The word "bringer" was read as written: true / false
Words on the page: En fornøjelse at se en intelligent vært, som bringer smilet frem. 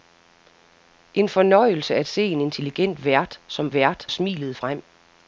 false